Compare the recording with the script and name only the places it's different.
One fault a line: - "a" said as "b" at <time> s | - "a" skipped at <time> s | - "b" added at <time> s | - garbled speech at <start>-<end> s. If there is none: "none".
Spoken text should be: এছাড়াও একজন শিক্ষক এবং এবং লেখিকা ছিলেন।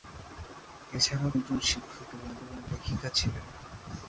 none